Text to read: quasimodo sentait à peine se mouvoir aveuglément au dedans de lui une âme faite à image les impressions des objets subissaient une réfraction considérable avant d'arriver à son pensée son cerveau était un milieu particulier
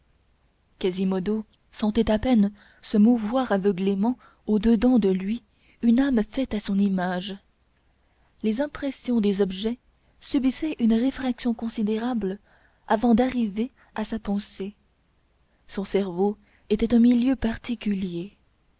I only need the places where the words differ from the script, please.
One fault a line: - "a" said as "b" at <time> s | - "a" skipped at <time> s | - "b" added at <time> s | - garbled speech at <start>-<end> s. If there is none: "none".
- "son" added at 6.6 s
- "son" said as "sa" at 14.0 s